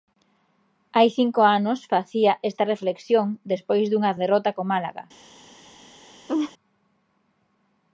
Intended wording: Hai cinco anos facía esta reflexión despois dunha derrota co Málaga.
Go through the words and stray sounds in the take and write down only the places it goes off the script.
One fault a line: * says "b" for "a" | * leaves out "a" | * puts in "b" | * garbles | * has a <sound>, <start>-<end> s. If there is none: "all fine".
* has a laugh, 6.3-6.5 s